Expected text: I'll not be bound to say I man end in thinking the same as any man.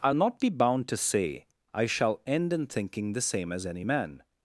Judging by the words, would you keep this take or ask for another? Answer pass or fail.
fail